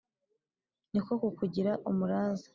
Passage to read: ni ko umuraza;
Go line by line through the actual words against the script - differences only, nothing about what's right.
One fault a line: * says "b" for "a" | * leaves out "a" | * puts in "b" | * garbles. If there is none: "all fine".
* puts in "kukugira"